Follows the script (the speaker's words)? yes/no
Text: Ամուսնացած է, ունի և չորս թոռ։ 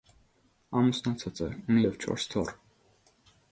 yes